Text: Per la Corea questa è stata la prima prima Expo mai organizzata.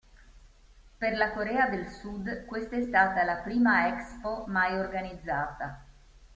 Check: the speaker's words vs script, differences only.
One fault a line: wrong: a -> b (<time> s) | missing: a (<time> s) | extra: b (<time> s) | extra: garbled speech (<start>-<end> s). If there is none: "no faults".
extra: del Sud (1.7 s)
missing: prima (3.9 s)